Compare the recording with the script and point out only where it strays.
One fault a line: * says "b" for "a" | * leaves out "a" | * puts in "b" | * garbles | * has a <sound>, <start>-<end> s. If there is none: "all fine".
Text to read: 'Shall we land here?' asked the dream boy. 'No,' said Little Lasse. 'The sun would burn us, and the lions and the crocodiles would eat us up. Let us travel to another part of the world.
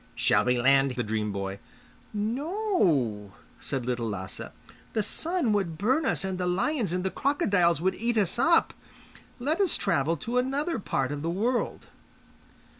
* leaves out "here asked"